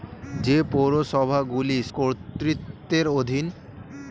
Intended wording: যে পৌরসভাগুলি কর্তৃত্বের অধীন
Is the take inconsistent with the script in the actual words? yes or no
no